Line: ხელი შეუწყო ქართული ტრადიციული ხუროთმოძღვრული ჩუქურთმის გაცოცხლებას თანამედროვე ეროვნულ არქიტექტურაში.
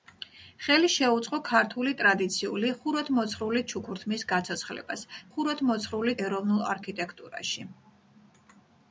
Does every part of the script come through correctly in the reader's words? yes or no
no